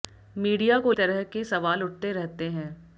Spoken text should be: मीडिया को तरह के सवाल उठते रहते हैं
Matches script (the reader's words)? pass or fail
pass